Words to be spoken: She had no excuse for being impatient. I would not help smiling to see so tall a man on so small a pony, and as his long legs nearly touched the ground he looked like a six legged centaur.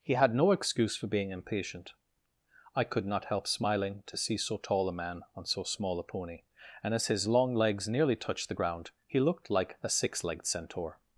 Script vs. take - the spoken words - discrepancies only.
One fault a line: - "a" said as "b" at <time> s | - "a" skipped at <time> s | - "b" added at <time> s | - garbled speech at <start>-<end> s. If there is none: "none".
- "She" said as "He" at 0.0 s
- "would" said as "could" at 2.8 s